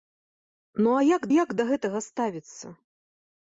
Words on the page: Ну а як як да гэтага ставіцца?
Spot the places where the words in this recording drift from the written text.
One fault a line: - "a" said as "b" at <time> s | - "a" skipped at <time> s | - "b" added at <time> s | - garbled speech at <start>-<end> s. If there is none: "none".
none